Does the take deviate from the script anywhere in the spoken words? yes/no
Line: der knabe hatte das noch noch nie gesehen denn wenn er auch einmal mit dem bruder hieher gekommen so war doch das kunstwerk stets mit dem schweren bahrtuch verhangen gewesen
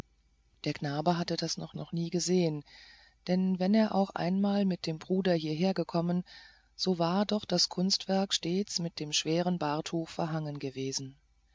no